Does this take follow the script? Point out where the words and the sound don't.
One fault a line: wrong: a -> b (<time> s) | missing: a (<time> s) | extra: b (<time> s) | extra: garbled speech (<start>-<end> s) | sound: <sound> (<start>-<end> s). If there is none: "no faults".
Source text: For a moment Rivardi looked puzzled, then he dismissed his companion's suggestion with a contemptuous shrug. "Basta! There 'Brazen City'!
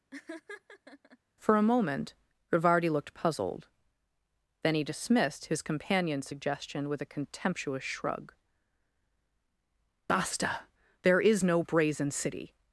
sound: laugh (0.1-1.2 s)
extra: is no (11.2 s)